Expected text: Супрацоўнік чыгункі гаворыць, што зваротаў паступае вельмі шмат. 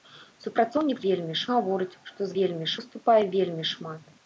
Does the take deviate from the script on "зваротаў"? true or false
true